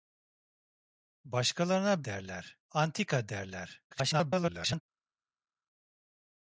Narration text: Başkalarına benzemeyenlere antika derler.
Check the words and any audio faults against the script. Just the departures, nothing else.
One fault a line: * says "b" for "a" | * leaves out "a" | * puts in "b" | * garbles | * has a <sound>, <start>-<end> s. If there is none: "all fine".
* says "derler" for "benzemeyenlere"
* garbles